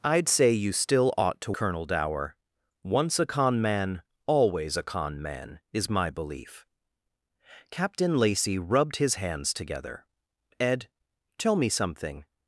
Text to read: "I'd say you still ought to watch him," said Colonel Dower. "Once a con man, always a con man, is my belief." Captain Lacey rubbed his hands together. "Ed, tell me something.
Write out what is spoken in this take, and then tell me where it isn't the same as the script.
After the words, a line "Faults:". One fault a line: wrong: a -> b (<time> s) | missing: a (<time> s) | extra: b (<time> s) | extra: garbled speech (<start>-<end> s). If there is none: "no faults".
"I'd say you still ought to Colonel Dower. "Once a con man, always a con man, is my belief." Captain Lacey rubbed his hands together. "Ed, tell me something.
Faults:
missing: watch him said (1.5 s)